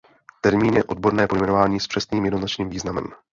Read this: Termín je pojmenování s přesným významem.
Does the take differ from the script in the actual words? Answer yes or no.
yes